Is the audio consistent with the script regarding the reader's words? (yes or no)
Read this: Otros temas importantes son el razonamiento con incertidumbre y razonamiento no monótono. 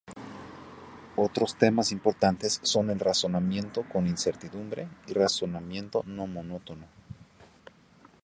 yes